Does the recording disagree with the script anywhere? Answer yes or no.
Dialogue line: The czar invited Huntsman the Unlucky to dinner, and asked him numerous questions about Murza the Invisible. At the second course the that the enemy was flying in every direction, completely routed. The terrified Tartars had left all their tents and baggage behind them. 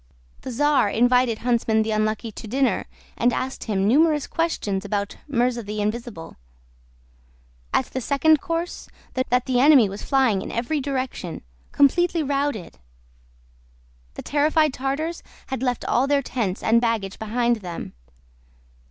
no